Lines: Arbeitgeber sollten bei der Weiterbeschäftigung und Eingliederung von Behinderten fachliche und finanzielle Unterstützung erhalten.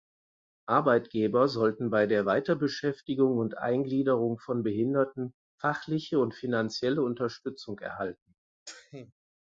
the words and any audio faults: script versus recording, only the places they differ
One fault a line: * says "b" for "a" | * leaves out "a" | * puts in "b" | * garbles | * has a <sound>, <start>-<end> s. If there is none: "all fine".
* has a sneeze, 8.7-9.1 s